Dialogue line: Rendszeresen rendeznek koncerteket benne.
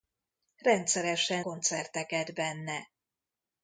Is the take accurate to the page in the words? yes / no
no